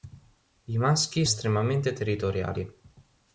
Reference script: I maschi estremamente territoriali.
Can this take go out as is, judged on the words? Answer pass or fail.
pass